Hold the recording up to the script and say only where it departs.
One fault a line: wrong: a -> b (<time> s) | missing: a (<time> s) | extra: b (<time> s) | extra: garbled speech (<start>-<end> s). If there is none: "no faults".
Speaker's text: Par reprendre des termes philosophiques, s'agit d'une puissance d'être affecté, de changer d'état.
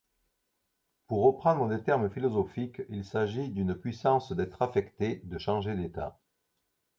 wrong: Par -> Pour (1.1 s)
extra: il (2.9 s)